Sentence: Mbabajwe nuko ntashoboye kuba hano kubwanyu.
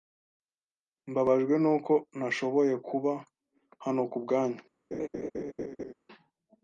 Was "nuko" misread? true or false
false